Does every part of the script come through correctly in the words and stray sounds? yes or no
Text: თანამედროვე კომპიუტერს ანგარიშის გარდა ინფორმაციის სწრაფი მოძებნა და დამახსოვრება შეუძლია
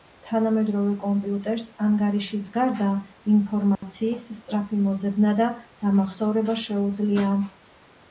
no